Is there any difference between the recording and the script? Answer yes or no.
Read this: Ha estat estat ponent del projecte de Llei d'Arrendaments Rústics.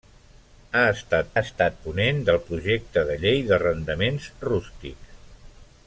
no